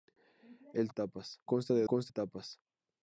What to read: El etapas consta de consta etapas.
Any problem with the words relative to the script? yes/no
no